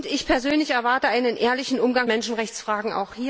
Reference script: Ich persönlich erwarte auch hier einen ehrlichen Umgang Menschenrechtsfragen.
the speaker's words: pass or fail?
pass